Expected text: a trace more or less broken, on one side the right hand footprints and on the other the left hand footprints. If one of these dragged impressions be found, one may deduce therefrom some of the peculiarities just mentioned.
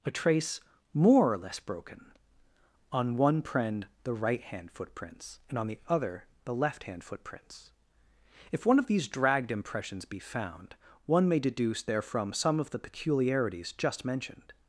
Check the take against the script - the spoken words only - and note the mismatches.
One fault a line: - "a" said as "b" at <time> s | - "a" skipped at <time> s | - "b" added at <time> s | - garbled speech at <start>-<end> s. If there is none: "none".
- "side" said as "prend" at 3.4 s